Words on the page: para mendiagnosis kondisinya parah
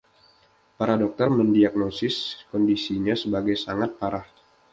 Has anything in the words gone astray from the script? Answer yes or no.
yes